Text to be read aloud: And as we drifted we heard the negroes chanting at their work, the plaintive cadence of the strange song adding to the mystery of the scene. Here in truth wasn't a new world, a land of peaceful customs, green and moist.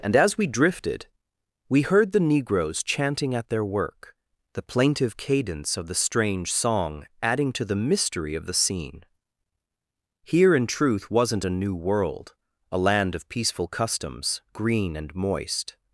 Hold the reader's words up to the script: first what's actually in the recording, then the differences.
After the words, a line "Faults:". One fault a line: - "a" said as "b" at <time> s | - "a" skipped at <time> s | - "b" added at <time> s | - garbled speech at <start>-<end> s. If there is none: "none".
And as we drifted we heard the negroes chanting at their work, the plaintive cadence of the strange song adding to the mystery of the scene. Here in truth wasn't a new world, a land of peaceful customs, green and moist.
Faults:
none